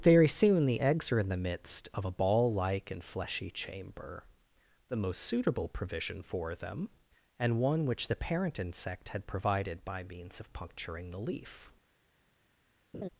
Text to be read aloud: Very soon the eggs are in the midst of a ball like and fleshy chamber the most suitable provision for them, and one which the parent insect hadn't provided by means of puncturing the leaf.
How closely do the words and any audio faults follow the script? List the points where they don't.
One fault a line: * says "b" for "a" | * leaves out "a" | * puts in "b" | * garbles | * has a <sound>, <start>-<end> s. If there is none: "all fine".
* says "had" for "hadn't"
* has a laugh, 12.9-13.1 s